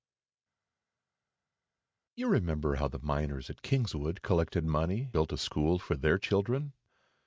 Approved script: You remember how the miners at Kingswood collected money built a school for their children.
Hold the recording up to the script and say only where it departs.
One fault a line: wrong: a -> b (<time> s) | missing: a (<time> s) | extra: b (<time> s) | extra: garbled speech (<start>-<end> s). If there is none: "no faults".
no faults